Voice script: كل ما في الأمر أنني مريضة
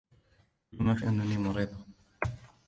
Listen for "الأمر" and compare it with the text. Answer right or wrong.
wrong